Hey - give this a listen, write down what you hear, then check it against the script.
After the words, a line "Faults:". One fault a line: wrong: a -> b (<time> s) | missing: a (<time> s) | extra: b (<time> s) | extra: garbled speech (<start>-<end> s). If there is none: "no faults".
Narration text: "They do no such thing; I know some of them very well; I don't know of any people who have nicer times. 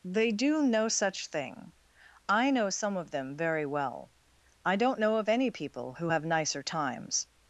"They do no such thing; I know some of them very well; I don't know of any people who have nicer times.
Faults:
no faults